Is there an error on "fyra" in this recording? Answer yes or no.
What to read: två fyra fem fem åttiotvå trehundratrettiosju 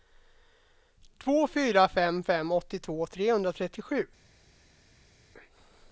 no